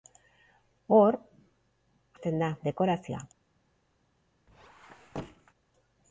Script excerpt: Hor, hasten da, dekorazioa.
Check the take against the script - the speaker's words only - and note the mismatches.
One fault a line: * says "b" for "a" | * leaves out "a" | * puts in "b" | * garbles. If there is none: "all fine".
all fine